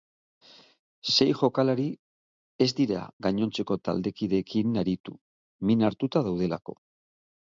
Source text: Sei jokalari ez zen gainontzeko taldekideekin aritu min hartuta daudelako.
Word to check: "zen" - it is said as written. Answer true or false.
false